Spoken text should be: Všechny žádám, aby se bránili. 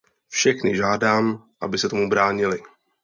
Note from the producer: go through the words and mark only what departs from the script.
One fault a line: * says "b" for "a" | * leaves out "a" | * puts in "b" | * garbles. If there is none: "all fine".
* puts in "tomu"